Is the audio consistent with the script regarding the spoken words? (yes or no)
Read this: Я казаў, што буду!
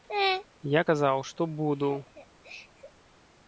yes